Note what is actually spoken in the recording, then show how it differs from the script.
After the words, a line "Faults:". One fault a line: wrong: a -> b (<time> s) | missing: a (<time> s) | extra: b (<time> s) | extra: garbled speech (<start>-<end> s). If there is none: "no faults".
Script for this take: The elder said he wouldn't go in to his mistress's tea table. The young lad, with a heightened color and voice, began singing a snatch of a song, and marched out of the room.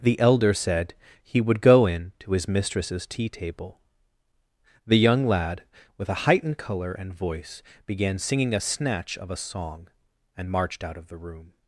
The elder said he would go in to his mistress's tea table. The young lad, with a heightened color and voice, began singing a snatch of a song, and marched out of the room.
Faults:
wrong: wouldn't -> would (1.4 s)